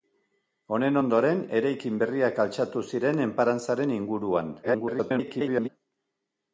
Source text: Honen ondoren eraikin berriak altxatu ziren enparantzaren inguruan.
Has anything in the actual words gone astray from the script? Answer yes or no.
yes